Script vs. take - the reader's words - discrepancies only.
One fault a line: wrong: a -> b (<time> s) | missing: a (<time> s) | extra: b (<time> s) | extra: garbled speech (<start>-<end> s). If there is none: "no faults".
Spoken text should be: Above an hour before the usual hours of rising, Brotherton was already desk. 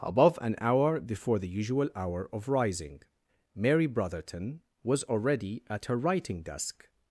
wrong: hours -> hour (1.9 s)
extra: Mary (3.5 s)
extra: at her writing (5.7 s)